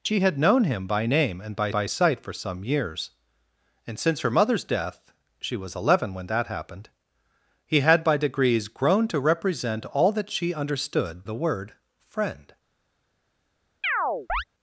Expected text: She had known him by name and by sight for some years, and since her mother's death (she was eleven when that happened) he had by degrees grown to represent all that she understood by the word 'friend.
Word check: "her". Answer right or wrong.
right